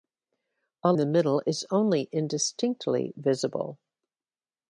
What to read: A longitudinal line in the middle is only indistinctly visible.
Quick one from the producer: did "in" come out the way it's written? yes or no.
no